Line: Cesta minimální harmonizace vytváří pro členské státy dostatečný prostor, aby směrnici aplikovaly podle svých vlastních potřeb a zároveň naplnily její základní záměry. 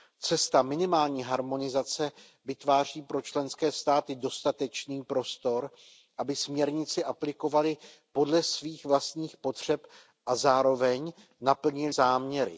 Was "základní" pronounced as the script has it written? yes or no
no